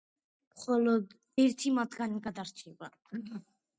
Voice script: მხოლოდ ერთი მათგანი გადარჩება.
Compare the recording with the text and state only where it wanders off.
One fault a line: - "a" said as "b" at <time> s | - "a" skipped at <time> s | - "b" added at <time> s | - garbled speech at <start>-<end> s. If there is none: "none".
none